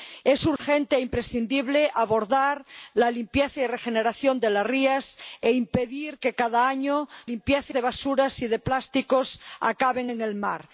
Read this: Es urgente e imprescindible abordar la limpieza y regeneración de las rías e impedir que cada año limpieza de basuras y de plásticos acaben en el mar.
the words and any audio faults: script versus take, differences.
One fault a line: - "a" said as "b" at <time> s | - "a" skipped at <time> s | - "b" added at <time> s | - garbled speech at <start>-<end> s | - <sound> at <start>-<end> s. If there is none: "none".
- dropout at 0.6-0.6 s